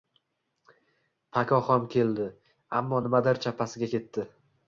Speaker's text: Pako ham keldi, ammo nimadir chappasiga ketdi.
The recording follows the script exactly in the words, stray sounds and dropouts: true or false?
true